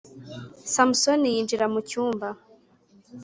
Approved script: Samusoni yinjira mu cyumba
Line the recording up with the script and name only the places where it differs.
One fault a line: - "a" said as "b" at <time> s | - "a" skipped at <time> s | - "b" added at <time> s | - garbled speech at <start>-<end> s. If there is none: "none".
none